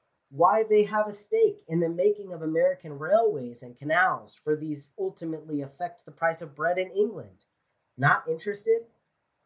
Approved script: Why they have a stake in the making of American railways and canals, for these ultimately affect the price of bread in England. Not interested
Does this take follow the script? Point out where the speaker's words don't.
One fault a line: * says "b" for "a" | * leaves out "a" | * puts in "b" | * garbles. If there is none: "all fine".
all fine